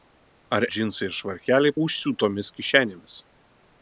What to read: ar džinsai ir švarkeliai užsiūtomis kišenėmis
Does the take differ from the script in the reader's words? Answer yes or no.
no